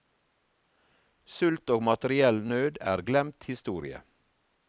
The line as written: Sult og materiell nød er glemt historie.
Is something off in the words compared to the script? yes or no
no